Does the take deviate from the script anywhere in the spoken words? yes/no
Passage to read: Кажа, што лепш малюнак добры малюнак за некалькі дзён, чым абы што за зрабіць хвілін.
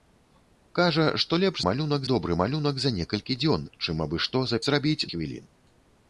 no